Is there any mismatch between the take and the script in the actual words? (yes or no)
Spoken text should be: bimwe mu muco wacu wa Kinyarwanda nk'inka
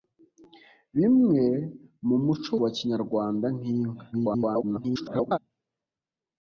yes